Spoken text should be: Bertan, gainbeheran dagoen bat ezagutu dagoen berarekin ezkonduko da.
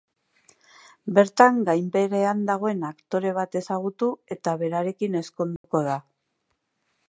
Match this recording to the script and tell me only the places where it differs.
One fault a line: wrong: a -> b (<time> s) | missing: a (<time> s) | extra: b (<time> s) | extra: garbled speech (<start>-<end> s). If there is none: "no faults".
extra: aktore (2.9 s)
wrong: dagoen -> eta (4.4 s)